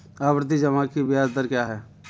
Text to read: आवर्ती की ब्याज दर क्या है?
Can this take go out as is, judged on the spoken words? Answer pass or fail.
fail